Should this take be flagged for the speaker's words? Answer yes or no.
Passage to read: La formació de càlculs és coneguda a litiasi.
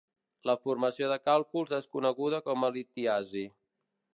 yes